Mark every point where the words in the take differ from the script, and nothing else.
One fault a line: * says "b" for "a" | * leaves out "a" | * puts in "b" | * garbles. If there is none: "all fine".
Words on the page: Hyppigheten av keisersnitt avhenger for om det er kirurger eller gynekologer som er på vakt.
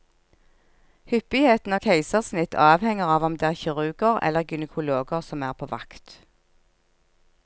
* says "av" for "for"